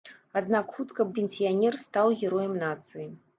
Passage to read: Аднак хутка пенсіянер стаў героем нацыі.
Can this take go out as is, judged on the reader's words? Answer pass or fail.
pass